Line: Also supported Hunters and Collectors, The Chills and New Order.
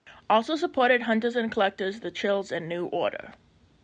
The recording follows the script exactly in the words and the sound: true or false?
true